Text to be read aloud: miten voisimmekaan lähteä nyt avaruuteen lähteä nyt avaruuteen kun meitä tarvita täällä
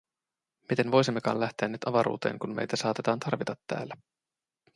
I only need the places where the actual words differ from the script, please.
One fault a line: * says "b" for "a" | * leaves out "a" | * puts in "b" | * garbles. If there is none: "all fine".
* leaves out "lähteä nyt avaruuteen"
* puts in "saatetaan"